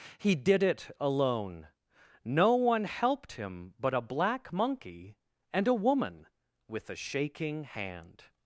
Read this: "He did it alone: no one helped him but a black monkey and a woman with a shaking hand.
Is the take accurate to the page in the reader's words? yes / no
yes